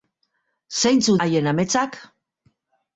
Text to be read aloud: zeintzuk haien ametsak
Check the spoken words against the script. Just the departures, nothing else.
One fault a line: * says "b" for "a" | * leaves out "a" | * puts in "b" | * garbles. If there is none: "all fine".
all fine